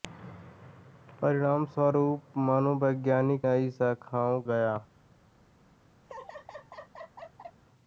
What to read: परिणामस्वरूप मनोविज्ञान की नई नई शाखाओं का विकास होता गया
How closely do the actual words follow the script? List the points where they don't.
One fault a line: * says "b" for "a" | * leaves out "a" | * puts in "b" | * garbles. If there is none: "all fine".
* leaves out "की"
* leaves out "नई"
* leaves out "का विकास होता"